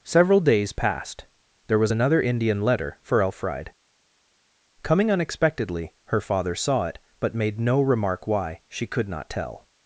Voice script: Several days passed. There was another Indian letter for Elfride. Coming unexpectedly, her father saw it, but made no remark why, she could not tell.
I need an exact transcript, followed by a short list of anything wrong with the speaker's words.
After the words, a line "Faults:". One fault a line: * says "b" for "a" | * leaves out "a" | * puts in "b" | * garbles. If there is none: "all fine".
Several days passed. There was another Indian letter for Elfride. Coming unexpectedly, her father saw it, but made no remark why, she could not tell.
Faults:
all fine